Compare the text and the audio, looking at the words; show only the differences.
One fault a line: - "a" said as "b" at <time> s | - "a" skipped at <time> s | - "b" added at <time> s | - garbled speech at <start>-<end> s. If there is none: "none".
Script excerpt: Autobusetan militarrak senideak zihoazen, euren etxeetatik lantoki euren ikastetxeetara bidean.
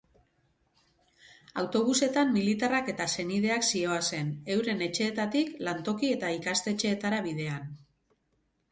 - "eta" added at 3.0 s
- "euren" said as "eta" at 6.2 s